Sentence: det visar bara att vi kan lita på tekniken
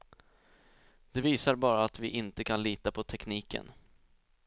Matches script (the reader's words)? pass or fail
fail